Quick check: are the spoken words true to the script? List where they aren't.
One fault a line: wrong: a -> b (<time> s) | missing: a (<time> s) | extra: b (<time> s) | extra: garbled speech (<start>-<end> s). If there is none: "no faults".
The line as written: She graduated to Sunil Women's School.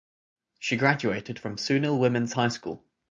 wrong: to -> from (1.3 s)
extra: High (2.3 s)